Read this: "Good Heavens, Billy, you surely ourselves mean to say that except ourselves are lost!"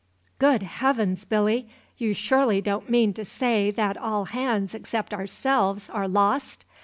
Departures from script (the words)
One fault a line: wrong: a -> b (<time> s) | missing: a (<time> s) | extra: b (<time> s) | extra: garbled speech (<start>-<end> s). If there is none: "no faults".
wrong: ourselves -> don't (2.6 s)
extra: all hands (4.0 s)